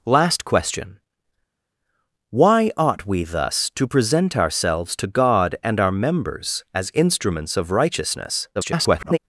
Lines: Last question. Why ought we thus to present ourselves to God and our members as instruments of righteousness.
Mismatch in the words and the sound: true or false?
true